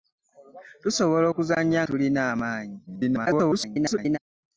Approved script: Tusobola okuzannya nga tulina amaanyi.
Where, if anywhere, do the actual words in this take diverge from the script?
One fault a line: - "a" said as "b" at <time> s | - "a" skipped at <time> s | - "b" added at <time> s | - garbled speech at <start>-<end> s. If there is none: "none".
- "nga" skipped at 1.8 s
- garbled speech at 2.9-4.2 s